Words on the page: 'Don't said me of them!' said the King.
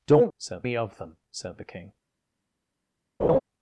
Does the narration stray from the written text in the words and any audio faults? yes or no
yes